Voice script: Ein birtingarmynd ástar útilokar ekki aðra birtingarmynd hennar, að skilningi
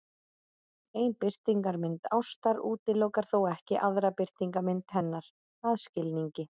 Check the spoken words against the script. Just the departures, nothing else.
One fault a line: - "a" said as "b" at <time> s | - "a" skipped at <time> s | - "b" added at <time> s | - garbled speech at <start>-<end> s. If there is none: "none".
- "þó" added at 3.3 s